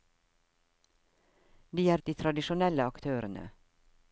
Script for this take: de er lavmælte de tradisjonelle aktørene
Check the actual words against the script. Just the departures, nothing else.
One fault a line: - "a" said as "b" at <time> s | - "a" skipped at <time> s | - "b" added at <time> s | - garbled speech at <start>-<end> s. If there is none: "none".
- "lavmælte" skipped at 2.0 s